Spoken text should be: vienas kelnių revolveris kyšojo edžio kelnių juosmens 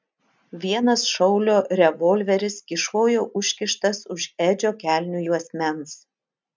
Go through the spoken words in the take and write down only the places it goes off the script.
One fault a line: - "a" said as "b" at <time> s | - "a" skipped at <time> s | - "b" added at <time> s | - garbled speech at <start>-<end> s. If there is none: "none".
- "kelnių" said as "šaulio" at 1.1 s
- "užkištas už" added at 3.4 s